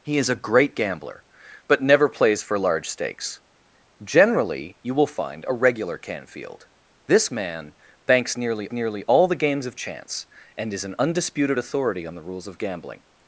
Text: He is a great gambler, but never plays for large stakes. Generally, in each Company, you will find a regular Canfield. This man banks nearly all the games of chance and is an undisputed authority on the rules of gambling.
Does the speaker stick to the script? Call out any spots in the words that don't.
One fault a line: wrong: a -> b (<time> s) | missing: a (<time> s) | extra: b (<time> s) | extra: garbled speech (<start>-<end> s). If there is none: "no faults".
missing: in each Company (4.8 s)
extra: nearly (8.7 s)